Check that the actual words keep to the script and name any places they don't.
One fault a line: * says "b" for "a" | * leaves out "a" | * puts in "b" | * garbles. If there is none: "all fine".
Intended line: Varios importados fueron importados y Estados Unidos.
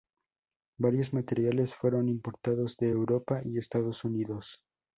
* says "materiales" for "importados"
* puts in "de Europa"